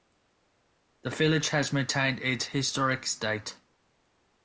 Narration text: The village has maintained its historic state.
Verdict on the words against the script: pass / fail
pass